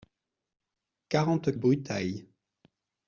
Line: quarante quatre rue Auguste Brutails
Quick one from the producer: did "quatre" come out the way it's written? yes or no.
no